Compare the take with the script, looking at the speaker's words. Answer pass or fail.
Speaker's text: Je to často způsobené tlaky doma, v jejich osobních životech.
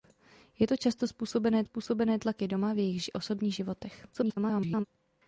fail